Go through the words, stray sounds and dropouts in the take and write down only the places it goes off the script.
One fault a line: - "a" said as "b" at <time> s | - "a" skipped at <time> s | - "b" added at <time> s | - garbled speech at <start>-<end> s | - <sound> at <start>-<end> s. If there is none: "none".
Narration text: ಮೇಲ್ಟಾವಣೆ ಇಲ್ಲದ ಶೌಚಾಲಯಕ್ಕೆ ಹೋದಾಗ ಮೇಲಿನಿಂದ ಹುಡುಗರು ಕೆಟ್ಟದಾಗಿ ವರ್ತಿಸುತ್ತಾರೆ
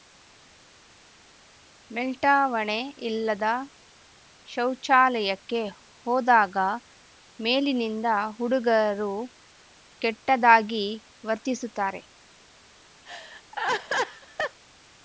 - laugh at 13.1-14.6 s